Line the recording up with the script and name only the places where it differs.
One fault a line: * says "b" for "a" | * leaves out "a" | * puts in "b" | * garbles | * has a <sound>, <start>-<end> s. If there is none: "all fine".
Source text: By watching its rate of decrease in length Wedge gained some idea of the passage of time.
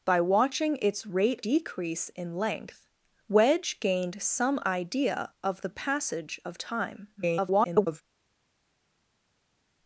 * leaves out "of"
* garbles